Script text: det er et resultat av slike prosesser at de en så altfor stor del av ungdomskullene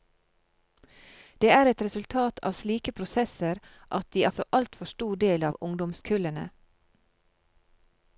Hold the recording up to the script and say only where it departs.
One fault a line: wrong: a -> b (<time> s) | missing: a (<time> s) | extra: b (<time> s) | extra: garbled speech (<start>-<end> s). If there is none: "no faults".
no faults